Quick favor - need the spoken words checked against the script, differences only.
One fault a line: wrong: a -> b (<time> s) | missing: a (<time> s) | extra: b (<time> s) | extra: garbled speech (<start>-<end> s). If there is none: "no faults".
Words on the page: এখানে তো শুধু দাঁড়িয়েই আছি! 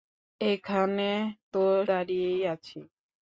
missing: শুধু (1.6 s)